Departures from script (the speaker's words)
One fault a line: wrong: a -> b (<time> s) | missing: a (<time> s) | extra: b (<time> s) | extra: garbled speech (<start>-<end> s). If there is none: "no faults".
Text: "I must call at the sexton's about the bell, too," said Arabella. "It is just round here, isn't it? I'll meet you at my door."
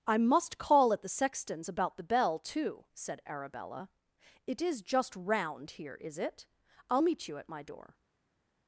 wrong: isn't -> is (6.0 s)